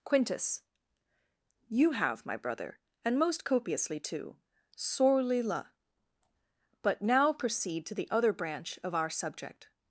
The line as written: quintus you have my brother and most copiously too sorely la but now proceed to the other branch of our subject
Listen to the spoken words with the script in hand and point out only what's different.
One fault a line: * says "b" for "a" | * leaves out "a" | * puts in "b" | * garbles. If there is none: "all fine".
all fine